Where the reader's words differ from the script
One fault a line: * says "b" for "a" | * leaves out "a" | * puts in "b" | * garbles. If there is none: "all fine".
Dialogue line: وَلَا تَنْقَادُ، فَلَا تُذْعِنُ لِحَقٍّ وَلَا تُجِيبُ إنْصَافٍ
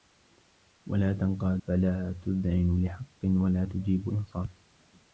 all fine